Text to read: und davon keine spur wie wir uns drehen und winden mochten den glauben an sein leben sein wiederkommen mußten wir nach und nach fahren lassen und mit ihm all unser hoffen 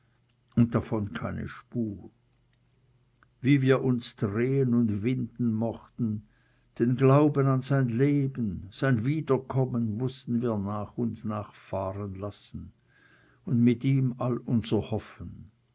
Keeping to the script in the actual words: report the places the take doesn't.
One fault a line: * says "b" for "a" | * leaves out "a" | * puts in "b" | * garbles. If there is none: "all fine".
all fine